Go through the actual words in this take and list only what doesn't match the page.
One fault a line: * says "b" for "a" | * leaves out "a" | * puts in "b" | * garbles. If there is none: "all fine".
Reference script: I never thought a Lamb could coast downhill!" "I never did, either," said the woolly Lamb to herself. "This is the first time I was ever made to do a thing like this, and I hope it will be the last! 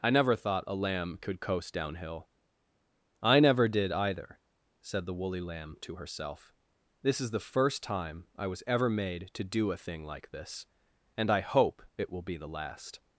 all fine